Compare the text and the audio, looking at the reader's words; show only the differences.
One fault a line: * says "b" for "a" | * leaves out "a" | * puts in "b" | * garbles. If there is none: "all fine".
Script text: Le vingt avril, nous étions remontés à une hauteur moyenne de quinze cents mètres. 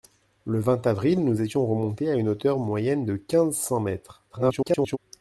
* garbles